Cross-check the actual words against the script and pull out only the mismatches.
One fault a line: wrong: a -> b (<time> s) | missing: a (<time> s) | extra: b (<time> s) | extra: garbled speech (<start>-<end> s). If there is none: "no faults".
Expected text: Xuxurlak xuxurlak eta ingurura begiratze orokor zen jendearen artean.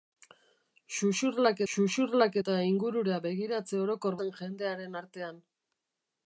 no faults